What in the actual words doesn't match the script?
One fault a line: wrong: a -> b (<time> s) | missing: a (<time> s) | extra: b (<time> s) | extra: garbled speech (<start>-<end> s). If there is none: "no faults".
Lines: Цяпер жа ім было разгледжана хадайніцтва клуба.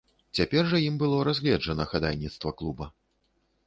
no faults